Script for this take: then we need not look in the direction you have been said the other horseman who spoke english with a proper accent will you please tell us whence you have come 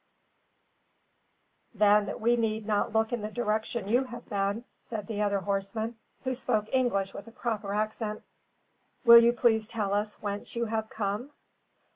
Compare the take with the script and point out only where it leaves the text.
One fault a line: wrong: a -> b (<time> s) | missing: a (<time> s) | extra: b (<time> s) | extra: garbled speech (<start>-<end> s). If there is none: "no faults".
no faults